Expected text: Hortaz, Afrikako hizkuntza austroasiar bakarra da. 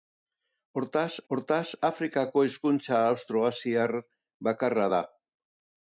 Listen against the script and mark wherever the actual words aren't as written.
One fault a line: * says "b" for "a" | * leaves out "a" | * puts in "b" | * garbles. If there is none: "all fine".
* puts in "hortaz"